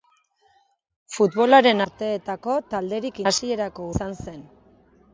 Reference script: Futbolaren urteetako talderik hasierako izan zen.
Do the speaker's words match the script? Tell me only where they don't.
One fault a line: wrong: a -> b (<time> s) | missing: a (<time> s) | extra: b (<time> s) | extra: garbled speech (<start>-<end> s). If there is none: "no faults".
no faults